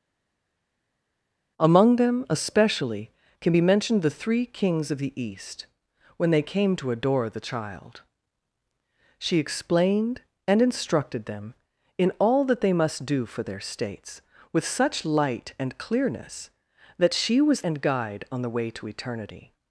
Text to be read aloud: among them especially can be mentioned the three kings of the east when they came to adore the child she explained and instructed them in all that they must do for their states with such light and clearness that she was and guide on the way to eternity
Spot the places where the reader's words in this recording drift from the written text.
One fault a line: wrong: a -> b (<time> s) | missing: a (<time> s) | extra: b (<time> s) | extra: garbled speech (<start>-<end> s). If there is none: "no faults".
no faults